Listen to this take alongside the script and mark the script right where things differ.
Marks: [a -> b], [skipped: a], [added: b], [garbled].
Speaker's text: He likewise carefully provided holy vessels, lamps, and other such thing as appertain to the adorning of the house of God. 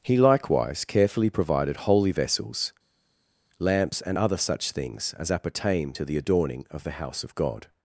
He likewise carefully provided holy vessels, lamps, and other such [thing -> things] as appertain to the adorning of the house of God.